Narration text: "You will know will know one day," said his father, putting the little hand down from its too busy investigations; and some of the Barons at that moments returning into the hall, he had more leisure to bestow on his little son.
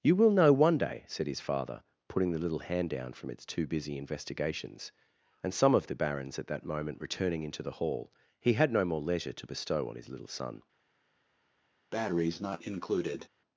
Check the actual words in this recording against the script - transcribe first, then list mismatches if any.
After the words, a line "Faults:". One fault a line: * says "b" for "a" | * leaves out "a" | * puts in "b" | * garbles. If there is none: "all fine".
"You will know one day," said his father, putting the little hand down from its too busy investigations; and some of the Barons at that moment returning into the hall, he had no more leisure to bestow on his little son.
Faults:
* leaves out "will know"
* says "moment" for "moments"
* puts in "no"